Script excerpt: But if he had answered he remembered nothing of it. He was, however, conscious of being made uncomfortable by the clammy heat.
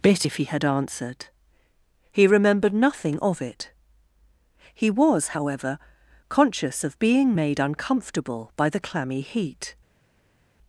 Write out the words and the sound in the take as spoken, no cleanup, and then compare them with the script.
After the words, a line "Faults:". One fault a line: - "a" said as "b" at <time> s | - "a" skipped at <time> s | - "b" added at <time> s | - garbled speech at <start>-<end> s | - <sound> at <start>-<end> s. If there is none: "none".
Bit if he had answered he remembered nothing of it. He was, however, conscious of being made uncomfortable by the clammy heat.
Faults:
- "But" said as "Bit" at 0.0 s